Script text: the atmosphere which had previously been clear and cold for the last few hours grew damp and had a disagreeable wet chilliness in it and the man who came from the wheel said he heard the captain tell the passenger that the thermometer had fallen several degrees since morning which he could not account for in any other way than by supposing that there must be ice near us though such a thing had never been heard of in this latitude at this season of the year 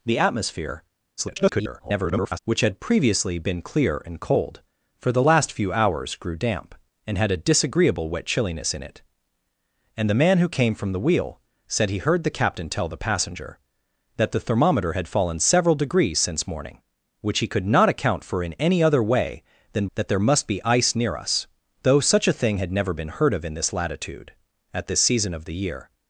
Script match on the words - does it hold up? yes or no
no